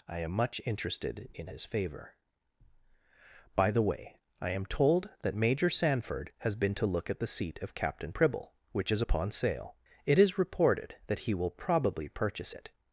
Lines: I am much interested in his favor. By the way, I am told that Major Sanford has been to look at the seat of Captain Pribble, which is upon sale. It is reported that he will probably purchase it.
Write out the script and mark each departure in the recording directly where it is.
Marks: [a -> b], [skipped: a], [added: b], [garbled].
I am much interested in his favor. By the way, I am told that Major Sanford has been to look at the seat of Captain Pribble, which is upon sale. It is reported that he will probably purchase it.